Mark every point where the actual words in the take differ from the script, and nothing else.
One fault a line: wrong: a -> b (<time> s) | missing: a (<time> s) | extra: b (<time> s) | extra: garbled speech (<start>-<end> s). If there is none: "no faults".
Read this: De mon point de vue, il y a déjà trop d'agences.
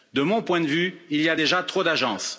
no faults